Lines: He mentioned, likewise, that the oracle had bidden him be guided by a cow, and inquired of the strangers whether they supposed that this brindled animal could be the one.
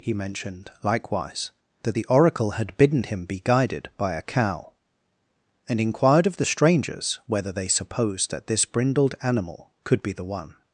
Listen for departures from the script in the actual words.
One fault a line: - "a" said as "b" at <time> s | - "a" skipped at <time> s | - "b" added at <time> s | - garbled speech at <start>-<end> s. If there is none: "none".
none